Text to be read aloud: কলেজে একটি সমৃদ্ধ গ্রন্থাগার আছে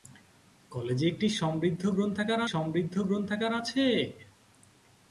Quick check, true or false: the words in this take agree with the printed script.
false